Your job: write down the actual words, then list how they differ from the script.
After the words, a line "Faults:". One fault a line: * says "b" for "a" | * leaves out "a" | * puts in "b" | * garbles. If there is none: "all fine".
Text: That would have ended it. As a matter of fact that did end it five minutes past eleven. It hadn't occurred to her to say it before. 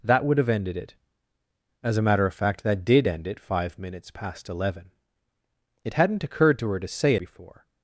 That would have ended it. As a matter of fact that did end it five minutes past eleven. It hadn't occurred to her to say before.
Faults:
* leaves out "it"